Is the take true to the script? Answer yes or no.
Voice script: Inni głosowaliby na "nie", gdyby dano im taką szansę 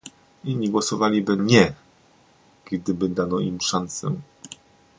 no